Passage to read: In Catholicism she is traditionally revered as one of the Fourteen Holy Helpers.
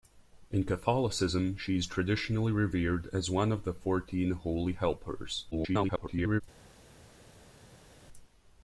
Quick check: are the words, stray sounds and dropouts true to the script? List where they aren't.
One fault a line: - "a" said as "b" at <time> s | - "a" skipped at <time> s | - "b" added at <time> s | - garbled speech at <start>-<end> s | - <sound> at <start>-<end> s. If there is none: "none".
- garbled speech at 5.5-6.4 s